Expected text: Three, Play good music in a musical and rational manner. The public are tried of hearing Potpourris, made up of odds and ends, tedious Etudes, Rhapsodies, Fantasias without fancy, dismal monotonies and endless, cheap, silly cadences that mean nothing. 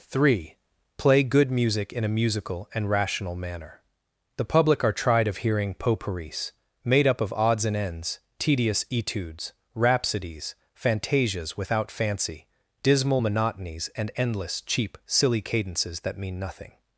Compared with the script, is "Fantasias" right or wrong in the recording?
right